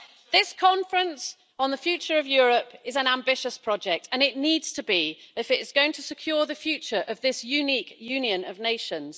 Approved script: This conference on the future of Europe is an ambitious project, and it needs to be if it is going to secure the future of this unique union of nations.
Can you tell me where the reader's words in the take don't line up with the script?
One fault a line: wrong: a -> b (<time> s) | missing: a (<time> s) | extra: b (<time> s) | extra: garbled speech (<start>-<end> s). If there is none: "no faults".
no faults